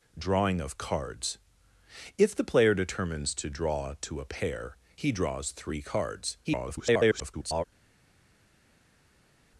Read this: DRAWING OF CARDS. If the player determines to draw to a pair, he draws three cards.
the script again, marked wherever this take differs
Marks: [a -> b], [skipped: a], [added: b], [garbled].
DRAWING OF CARDS. If the player determines to draw to a pair, he draws three cards. [garbled]